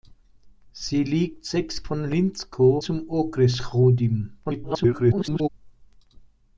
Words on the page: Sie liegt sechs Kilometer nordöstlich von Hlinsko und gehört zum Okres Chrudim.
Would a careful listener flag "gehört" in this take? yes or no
yes